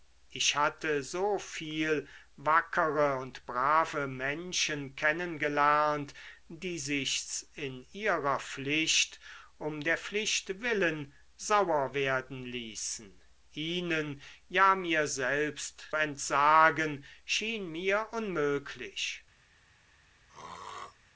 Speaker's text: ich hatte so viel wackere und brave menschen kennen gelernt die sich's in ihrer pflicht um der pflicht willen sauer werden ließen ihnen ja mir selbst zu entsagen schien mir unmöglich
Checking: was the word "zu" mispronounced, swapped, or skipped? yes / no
yes